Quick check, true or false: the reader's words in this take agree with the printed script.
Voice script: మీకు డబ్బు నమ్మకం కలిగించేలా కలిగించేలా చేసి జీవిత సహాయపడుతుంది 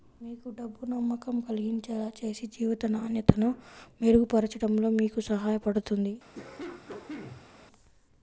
false